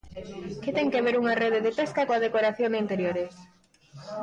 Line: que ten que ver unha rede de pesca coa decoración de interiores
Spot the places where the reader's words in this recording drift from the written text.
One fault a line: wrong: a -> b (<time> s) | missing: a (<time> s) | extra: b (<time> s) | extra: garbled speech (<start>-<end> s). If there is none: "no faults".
no faults